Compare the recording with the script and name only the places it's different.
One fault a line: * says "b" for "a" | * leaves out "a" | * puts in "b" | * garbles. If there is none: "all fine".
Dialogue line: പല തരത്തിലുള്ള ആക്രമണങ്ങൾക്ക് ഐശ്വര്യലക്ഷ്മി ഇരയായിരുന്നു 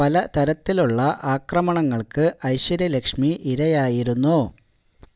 all fine